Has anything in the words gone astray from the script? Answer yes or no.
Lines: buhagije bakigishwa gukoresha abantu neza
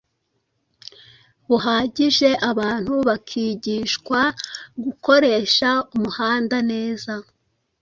yes